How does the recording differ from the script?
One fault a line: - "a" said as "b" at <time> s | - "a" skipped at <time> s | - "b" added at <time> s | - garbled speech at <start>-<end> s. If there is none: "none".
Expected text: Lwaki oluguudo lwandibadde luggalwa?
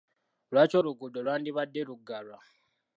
none